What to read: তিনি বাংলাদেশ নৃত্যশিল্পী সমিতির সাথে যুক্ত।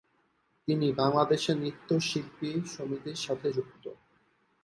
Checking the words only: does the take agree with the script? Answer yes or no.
yes